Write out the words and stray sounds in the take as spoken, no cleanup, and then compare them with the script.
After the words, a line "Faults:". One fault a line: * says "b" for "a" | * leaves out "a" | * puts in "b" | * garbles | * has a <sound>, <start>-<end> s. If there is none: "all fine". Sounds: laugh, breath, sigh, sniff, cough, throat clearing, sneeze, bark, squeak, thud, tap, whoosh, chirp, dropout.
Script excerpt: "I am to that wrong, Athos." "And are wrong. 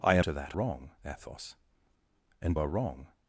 "I am to that wrong, Athos." "And are wrong.
Faults:
all fine